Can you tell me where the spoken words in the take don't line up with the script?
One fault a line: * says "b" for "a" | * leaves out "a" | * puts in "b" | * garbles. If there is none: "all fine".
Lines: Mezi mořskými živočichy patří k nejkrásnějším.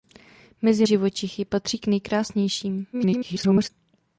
* leaves out "mořskými"
* garbles